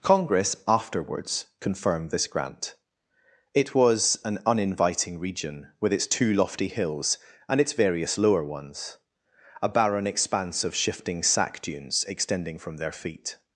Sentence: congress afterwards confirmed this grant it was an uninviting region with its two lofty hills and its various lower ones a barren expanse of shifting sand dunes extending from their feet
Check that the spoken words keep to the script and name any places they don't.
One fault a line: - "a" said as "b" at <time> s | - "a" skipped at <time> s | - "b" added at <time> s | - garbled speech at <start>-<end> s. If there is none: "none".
- "sand" said as "sack" at 11.2 s